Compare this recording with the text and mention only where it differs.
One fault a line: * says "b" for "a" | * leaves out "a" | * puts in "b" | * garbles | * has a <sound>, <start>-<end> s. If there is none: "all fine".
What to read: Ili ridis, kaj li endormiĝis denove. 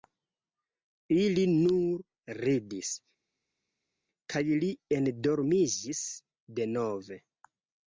* puts in "nur"